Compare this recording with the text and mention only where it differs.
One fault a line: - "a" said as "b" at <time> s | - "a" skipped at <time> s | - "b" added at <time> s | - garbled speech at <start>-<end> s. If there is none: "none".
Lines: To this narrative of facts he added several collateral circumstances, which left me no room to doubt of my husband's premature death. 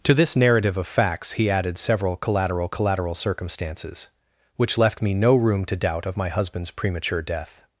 - "collateral" added at 2.7 s